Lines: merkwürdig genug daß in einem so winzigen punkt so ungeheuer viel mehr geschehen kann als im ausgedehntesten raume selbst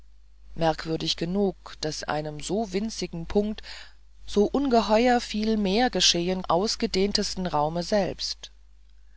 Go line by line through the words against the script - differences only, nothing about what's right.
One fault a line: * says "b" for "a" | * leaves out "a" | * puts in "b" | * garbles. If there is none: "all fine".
* leaves out "in"
* leaves out "kann als im"